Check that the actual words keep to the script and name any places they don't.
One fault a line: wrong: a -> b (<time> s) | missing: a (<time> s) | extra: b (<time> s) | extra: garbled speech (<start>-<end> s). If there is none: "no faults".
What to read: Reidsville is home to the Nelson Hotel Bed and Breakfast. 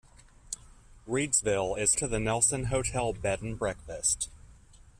missing: home (2.0 s)